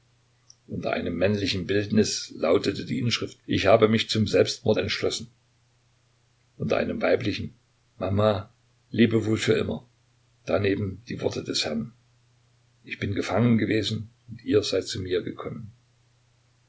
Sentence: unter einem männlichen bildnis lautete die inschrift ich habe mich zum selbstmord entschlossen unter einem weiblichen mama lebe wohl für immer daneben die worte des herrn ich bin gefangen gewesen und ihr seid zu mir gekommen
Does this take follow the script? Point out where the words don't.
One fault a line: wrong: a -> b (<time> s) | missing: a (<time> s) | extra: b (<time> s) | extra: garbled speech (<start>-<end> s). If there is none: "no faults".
no faults